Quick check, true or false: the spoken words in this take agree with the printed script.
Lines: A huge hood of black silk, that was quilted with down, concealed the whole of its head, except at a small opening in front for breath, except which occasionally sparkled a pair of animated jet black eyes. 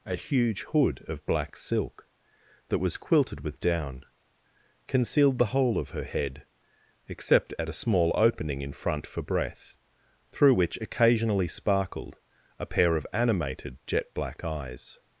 false